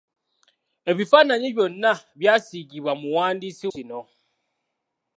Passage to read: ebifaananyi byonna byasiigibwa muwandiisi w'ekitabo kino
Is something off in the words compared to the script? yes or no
yes